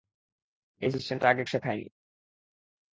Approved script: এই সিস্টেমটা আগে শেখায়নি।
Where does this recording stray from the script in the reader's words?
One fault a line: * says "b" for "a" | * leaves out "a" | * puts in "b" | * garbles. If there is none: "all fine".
all fine